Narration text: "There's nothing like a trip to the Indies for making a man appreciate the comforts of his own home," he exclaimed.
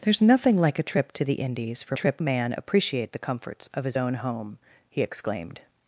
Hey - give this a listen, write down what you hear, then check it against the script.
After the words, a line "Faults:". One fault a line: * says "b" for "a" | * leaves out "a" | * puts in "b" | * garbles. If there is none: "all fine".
"There's nothing like a trip to the Indies for trip a man appreciate the comforts of his own home," he exclaimed.
Faults:
* says "trip" for "making"